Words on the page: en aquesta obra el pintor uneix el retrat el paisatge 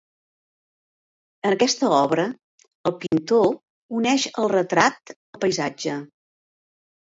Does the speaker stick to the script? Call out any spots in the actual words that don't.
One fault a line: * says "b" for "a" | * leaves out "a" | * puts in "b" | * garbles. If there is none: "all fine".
all fine